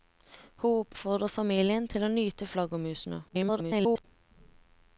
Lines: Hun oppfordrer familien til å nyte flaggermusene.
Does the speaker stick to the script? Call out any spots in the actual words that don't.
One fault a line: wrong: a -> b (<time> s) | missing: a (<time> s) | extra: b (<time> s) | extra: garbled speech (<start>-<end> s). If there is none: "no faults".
extra: garbled speech (3.3-4.0 s)